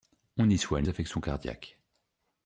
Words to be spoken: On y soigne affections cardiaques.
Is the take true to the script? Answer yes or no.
yes